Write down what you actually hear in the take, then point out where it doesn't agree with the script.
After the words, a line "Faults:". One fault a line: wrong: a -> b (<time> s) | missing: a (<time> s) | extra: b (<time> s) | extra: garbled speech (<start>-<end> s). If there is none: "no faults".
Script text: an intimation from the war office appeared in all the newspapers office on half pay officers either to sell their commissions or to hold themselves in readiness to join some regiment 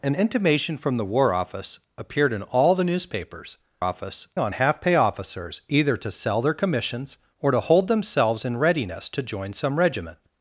an intimation from the war office appeared in all the newspapers office on half pay officers either to sell their commissions or to hold themselves in readiness to join some regiment
Faults:
no faults